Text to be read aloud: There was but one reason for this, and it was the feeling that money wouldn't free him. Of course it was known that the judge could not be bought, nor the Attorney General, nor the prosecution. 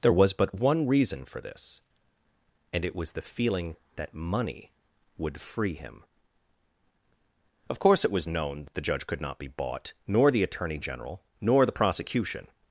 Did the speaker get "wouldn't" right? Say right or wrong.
wrong